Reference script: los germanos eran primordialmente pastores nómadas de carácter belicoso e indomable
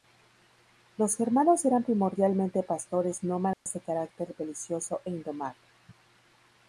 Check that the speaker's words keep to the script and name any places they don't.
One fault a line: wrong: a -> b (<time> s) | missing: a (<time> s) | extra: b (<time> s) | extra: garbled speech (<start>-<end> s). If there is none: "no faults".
no faults